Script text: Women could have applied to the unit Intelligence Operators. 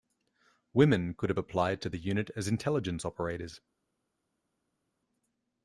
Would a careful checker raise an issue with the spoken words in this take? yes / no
yes